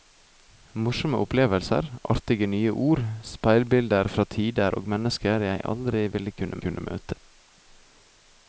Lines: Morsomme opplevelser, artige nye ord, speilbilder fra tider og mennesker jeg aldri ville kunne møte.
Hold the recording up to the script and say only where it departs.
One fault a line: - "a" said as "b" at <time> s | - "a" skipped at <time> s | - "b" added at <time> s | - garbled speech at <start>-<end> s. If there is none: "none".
- "kunne" added at 6.7 s